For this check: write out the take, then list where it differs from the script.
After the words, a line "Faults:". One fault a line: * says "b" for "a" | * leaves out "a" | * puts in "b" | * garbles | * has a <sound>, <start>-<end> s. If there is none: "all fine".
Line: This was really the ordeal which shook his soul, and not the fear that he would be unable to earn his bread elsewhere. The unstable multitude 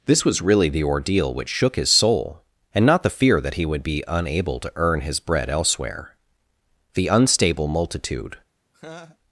This was really the ordeal which shook his soul, and not the fear that he would be unable to earn his bread elsewhere. The unstable multitude
Faults:
* has a laugh, 8.7-9.2 s